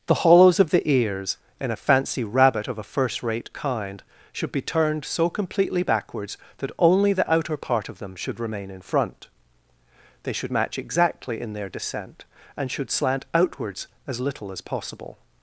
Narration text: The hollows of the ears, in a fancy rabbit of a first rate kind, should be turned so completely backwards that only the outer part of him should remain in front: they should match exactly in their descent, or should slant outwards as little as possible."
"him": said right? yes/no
no